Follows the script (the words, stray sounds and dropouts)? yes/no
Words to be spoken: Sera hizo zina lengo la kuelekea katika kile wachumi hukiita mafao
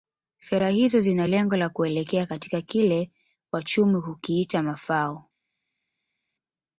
yes